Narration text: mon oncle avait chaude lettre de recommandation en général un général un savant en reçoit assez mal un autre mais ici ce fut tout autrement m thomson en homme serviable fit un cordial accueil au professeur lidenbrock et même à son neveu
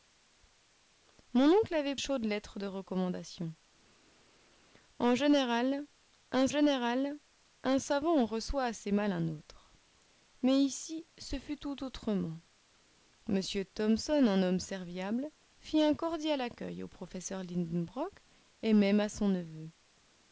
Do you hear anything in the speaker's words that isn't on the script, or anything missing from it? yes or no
no